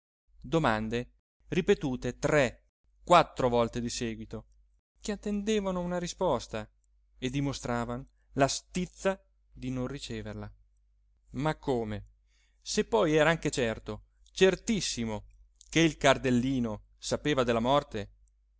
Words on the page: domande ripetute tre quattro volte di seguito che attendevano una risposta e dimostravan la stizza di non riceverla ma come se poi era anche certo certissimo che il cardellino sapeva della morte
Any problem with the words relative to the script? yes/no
no